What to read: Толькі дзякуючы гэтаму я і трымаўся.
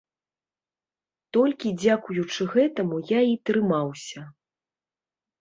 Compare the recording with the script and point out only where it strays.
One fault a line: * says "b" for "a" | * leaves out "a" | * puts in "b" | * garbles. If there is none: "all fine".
all fine